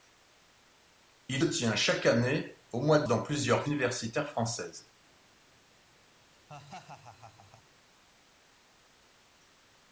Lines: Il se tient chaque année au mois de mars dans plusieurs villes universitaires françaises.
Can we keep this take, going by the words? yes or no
no